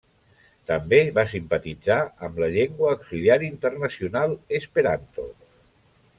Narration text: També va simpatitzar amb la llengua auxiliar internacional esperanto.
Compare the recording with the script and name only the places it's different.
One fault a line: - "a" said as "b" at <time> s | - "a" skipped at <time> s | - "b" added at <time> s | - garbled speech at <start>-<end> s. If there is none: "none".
none